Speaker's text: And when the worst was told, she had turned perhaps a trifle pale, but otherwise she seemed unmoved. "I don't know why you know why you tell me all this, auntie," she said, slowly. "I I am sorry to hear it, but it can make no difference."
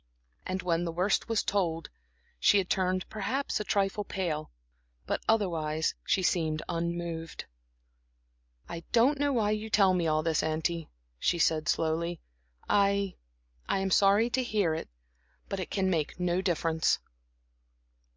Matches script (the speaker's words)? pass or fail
fail